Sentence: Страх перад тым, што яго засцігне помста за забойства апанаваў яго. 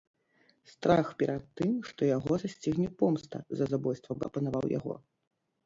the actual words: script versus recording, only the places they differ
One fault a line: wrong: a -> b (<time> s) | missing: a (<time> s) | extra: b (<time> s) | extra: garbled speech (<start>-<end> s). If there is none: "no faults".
no faults